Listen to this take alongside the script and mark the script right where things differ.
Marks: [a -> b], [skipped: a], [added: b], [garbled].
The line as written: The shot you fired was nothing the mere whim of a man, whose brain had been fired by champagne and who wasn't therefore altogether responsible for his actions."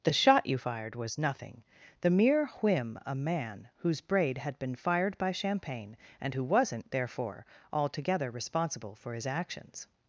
The shot you fired was nothing the mere whim [skipped: of] a man, whose [brain -> braid] had been fired by champagne and who wasn't therefore altogether responsible for his actions."